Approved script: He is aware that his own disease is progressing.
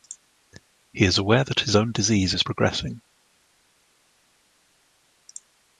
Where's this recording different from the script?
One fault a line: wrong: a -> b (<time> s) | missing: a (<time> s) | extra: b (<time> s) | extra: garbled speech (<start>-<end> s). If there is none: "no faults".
no faults